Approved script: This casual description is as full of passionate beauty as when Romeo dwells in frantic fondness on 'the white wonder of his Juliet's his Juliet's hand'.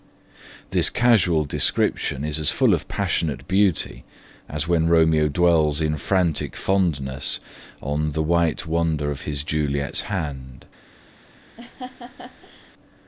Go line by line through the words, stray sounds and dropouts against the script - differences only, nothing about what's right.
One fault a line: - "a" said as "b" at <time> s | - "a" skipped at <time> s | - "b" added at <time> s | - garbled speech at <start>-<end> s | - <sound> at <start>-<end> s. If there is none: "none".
- "his Juliet's" skipped at 10.0 s
- laugh at 11.6-12.7 s